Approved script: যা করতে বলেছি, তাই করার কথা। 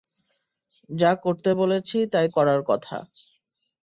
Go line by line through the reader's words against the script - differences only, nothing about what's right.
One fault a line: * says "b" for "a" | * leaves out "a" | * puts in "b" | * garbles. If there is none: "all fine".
all fine